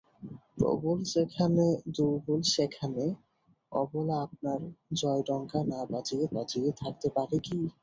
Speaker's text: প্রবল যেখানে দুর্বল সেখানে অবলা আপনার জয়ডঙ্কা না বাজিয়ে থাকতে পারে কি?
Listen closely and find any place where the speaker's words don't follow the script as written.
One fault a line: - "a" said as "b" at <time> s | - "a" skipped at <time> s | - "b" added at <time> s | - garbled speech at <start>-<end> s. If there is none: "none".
- "বাজিয়ে" added at 6.3 s